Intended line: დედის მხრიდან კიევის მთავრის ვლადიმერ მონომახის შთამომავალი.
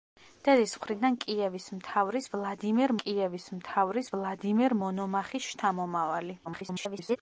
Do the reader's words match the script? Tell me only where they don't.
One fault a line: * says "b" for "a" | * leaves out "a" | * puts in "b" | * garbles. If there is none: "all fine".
* puts in "კიევის მთავრის ვლადიმერ"
* garbles